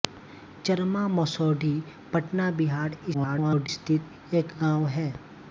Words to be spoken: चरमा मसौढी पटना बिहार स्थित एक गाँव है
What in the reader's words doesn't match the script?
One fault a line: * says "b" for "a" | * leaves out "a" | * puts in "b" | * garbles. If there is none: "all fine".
* garbles